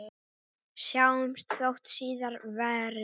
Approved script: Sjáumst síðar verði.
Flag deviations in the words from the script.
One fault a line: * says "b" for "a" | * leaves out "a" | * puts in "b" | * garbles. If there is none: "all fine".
* puts in "þótt"